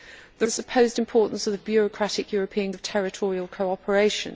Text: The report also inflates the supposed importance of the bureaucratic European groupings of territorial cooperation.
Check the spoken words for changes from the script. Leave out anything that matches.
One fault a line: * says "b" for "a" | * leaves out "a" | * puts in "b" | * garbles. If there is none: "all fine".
* leaves out "report also inflates"
* leaves out "groupings"